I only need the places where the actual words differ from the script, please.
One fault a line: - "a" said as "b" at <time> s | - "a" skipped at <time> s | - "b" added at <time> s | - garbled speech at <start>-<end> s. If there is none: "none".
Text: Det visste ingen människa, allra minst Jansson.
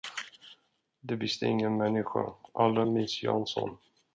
none